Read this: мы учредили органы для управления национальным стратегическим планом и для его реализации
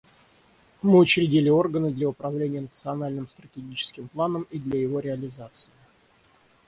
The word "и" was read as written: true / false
true